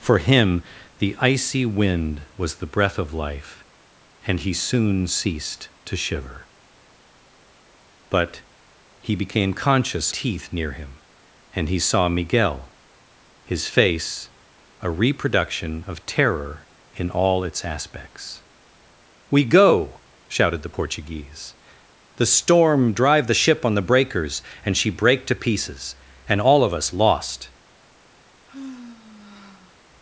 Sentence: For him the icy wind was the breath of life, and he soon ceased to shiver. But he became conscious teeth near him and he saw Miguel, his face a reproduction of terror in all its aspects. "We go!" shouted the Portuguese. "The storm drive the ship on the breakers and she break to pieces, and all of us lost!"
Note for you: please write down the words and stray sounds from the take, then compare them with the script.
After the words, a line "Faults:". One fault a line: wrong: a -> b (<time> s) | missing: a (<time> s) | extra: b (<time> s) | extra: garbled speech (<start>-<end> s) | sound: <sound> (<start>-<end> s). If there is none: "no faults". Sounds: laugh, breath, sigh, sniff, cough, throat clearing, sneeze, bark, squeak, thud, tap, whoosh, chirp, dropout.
For him the icy wind was the breath of life, and he soon ceased to shiver. But he became conscious teeth near him and he saw Miguel, his face a reproduction of terror in all its aspects. "We go!" shouted the Portuguese. "The storm drive the ship on the breakers and she break to pieces, and all of us lost!"
Faults:
sound: sigh (28.5-29.8 s)